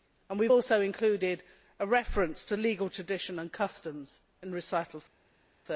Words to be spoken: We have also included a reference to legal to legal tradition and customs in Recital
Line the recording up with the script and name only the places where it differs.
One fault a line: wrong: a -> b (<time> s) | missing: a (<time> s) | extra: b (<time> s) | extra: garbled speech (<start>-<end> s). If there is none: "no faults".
missing: to legal (2.9 s)